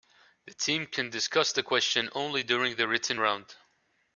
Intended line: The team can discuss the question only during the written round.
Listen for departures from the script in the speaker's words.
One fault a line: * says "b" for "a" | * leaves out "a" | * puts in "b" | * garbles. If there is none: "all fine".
all fine